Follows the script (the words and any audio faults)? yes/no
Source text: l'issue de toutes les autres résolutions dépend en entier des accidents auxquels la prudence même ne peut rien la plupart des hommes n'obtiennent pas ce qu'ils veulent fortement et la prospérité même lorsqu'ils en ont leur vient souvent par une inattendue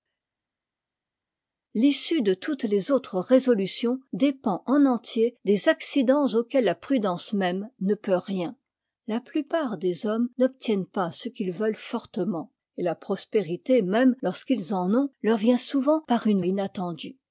yes